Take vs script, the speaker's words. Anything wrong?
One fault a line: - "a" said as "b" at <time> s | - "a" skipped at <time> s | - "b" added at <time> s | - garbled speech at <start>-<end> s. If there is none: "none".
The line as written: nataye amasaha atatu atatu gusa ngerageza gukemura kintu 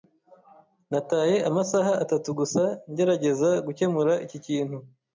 - "atatu" skipped at 2.3 s
- "iki" added at 4.2 s